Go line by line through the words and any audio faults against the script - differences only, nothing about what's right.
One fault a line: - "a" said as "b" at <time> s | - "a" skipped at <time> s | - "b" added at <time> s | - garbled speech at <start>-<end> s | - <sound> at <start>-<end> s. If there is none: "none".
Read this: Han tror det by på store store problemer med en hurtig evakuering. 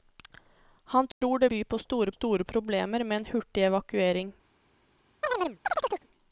- dropout at 1.1-1.2 s
- chirp at 5.2-6.1 s